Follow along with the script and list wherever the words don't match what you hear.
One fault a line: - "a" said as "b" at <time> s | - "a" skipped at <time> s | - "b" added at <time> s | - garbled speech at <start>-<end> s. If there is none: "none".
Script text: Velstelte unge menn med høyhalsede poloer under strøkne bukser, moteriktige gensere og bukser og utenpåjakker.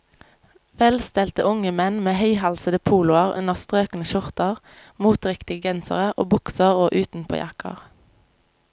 - "bukser" said as "skjorter" at 4.1 s